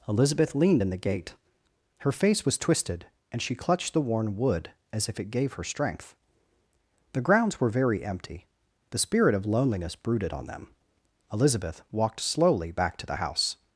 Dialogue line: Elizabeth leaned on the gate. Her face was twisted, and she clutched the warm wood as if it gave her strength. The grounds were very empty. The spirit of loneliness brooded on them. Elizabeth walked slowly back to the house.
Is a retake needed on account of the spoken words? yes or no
yes